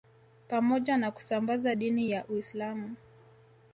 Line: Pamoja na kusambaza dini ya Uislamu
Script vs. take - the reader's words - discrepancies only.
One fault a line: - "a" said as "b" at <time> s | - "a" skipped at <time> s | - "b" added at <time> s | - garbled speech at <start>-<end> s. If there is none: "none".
none